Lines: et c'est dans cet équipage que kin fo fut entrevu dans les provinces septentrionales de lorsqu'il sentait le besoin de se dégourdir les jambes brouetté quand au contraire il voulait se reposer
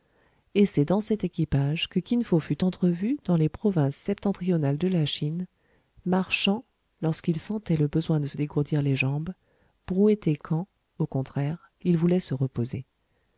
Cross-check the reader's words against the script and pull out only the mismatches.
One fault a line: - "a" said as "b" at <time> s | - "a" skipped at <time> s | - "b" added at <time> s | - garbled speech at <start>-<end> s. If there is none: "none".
- "la chine marchant" added at 4.9 s